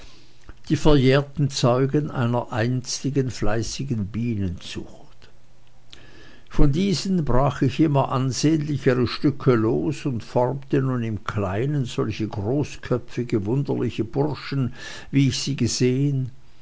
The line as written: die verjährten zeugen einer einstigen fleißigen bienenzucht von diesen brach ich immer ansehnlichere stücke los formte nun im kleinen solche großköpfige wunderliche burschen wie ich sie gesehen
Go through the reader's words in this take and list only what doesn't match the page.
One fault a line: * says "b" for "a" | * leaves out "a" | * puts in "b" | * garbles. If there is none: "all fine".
* puts in "und"